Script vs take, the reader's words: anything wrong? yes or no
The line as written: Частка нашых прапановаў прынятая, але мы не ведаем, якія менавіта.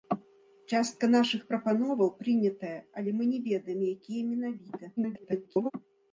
yes